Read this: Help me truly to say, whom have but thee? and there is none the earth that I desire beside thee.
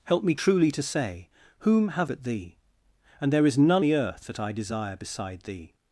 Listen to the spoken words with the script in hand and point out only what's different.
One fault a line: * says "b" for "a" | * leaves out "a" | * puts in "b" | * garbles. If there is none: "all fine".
all fine